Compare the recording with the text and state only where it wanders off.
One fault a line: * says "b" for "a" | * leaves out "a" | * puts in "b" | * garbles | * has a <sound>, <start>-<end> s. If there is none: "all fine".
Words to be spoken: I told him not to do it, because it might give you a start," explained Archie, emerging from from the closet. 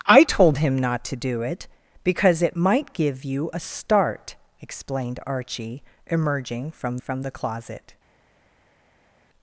all fine